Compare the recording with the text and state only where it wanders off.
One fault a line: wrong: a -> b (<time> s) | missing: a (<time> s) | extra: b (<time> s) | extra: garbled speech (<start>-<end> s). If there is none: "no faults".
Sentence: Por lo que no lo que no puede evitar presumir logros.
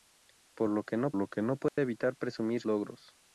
no faults